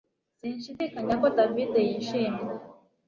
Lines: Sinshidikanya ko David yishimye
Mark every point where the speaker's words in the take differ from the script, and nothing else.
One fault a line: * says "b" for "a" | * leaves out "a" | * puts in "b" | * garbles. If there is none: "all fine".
all fine